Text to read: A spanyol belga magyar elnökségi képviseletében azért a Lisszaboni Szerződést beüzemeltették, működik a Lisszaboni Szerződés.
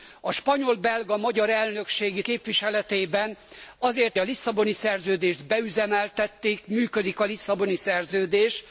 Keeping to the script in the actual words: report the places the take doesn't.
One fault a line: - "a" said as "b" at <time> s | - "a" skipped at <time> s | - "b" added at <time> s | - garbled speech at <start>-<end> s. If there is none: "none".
none